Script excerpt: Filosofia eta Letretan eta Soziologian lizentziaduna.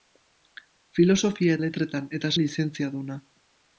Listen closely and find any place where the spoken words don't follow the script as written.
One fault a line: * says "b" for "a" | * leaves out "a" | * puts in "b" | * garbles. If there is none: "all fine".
* leaves out "eta"
* leaves out "Soziologian"